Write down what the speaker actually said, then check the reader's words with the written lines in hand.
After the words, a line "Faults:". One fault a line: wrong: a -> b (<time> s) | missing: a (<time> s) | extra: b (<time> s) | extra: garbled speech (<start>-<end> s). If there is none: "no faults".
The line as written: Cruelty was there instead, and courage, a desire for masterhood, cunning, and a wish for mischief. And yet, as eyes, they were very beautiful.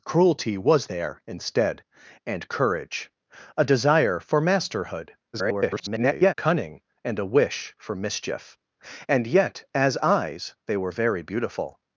Cruelty was there instead, and courage, a desire for masterhood, [garbled] cunning, and a wish for mischief. And yet, as eyes, they were very beautiful.
Faults:
extra: garbled speech (5.3-6.3 s)